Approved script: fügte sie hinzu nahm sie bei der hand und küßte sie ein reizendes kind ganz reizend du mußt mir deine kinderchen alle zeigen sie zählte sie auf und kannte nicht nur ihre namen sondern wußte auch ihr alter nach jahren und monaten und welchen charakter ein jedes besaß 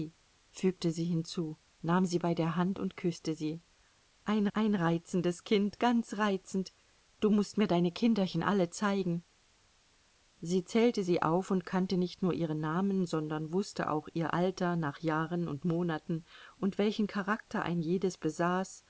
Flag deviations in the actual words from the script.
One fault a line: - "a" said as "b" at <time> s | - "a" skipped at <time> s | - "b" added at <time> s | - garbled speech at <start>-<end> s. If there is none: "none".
- "ein" added at 4.5 s